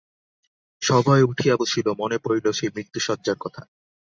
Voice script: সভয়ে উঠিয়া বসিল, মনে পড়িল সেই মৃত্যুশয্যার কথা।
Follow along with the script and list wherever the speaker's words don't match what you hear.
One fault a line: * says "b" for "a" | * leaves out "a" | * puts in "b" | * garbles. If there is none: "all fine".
all fine